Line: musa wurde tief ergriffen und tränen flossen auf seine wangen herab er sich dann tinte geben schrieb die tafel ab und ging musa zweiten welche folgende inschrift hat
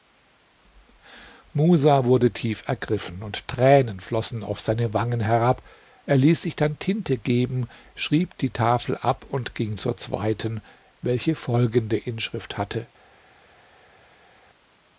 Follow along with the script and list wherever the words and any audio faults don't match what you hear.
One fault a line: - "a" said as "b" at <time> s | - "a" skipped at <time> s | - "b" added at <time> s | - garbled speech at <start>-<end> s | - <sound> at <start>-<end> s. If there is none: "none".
- "ließ" added at 6.2 s
- "musa" said as "zur" at 9.8 s
- "hat" said as "hatte" at 12.6 s